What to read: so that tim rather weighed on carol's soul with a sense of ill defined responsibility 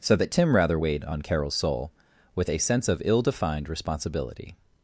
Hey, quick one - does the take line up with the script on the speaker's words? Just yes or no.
yes